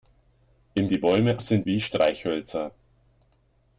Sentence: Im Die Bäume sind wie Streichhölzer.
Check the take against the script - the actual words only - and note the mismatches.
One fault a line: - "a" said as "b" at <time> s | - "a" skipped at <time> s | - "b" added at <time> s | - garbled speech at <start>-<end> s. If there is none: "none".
none